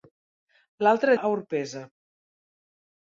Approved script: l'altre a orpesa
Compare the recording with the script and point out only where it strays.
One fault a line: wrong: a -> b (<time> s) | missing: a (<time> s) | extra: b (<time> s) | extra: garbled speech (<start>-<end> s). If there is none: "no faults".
no faults